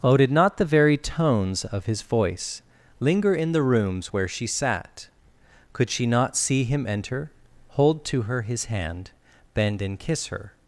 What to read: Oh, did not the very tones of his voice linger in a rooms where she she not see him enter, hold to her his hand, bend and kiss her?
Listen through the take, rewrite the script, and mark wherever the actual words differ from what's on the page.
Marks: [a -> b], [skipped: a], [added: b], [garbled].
Oh, did not the very tones of his voice linger in [a -> the] rooms where she [added: sat Could] she not see him enter, hold to her his hand, bend and kiss her?